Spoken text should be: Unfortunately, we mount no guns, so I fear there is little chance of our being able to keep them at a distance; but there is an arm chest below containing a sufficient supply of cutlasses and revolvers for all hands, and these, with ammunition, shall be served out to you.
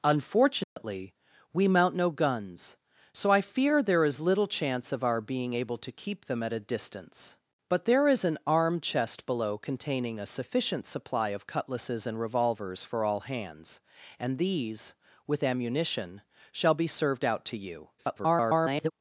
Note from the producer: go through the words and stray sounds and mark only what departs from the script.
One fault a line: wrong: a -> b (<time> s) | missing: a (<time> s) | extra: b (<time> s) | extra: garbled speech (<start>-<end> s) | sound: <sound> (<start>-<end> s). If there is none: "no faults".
sound: dropout (0.6-0.8 s)
extra: garbled speech (18.0-18.9 s)